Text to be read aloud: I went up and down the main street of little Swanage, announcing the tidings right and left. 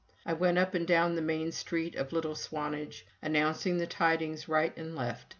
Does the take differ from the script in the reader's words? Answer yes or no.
no